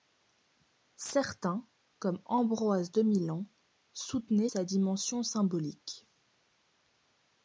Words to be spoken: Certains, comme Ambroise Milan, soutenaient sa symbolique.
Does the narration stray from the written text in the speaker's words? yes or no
yes